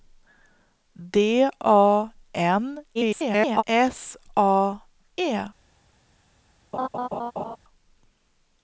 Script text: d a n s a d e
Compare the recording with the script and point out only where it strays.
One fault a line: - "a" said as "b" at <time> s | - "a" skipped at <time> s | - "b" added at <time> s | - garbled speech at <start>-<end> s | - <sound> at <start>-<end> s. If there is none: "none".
- garbled speech at 2.9-3.6 s
- "d" skipped at 4.8 s
- laugh at 6.7-7.6 s